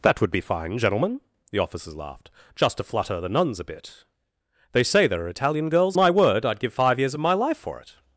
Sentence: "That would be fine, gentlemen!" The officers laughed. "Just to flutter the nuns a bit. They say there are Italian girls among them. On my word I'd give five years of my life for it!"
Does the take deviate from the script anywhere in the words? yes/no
yes